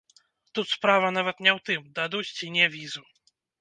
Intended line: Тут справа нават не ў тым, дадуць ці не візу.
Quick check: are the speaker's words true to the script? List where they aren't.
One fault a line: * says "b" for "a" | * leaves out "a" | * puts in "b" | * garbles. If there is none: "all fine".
all fine